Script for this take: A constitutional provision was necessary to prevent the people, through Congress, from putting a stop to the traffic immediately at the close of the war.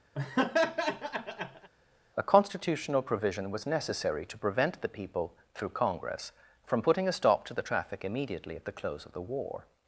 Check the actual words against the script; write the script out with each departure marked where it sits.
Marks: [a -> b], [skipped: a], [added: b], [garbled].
A constitutional provision was necessary to prevent the people, through Congress, from putting a stop to the traffic immediately at the close of the war.